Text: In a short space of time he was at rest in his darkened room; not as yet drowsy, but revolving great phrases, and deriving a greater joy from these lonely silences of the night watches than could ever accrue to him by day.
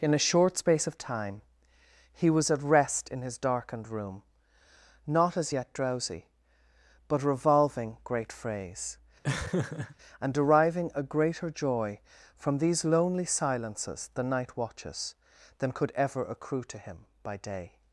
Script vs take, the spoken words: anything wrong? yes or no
yes